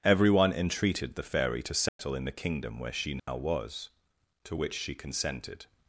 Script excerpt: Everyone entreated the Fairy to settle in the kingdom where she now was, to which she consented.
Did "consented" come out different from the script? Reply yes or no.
no